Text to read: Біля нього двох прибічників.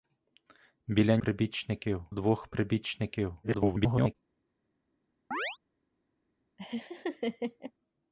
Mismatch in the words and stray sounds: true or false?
true